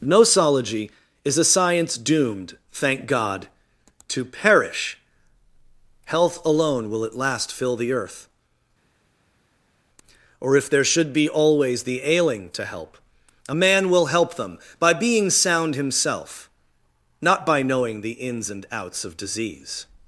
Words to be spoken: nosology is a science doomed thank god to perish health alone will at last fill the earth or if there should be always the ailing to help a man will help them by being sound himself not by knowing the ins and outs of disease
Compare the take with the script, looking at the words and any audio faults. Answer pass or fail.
pass